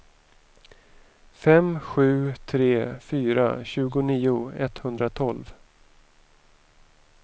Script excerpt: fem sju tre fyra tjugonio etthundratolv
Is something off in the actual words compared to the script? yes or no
no